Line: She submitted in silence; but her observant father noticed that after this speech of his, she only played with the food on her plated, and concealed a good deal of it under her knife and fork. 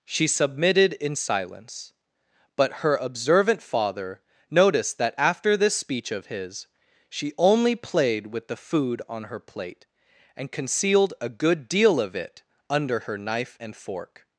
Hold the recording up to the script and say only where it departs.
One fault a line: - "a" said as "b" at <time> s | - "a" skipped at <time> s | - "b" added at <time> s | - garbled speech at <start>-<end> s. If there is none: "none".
- "plated" said as "plate" at 9.4 s